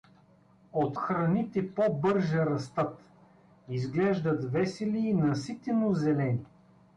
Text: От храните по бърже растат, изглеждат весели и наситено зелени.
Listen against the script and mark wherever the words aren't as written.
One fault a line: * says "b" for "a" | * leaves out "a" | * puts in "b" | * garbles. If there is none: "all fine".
all fine